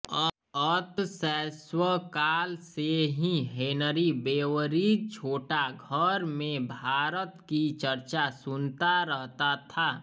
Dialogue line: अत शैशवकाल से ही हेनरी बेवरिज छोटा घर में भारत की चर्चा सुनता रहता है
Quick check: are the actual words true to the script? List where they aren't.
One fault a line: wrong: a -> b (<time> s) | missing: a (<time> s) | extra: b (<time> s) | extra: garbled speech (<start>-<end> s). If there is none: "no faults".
wrong: है -> था (9.7 s)